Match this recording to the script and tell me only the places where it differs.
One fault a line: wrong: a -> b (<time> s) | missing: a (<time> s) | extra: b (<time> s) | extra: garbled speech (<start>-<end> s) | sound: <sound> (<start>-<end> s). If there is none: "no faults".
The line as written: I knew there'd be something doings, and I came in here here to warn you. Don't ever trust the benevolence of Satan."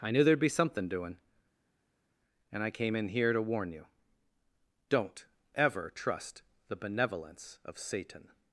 wrong: doings -> doing (0.9 s)
missing: here (3.3 s)